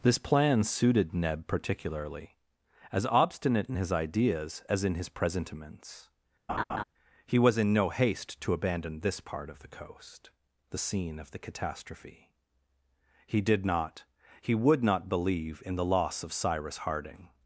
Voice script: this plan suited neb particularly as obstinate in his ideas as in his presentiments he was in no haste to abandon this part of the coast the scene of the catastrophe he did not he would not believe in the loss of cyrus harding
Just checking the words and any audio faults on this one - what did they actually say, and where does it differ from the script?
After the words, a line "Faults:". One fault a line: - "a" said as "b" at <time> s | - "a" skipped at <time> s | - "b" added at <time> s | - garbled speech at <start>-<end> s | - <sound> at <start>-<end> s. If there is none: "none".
this plan suited neb particularly as obstinate in his ideas as in his presentiments he was in no haste to abandon this part of the coast the scene of the catastrophe he did not he would not believe in the loss of cyrus harding
Faults:
- laugh at 6.5-6.8 s